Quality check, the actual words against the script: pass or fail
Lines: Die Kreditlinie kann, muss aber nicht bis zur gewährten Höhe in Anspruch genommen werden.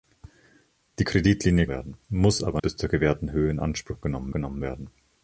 fail